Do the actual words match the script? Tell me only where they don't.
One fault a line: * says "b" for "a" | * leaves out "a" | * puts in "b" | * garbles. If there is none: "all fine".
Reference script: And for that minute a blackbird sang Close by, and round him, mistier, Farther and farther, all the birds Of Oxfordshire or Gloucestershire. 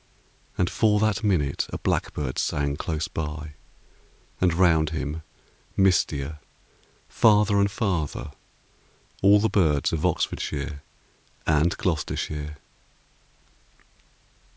* says "and" for "or"